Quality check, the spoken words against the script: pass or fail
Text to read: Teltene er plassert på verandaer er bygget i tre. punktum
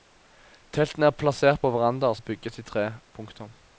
pass